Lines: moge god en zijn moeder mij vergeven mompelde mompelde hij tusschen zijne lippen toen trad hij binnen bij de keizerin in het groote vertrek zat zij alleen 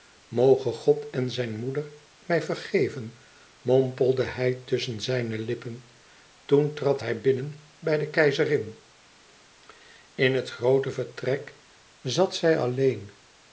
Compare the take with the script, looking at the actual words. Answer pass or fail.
fail